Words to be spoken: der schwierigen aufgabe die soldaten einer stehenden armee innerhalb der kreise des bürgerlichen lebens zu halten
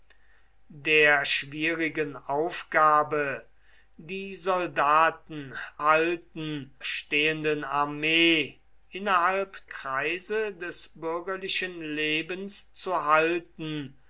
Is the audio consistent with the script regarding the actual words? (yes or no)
no